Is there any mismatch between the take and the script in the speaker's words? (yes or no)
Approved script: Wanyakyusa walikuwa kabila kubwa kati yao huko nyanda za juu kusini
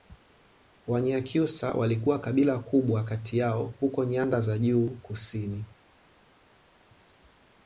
no